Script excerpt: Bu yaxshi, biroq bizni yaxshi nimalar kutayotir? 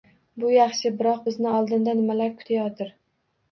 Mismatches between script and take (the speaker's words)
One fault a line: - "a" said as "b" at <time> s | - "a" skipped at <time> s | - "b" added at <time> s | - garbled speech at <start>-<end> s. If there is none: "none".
- "yaxshi" said as "oldinda" at 1.6 s